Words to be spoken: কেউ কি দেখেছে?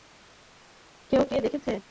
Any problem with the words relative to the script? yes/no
no